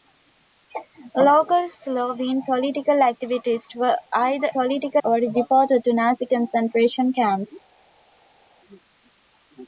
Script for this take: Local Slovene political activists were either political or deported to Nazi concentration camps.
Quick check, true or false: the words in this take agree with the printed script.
true